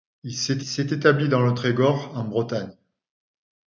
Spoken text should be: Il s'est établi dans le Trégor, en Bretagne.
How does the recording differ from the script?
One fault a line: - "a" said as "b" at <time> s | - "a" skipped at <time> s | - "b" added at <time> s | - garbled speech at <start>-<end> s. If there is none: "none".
- "s'est" added at 0.6 s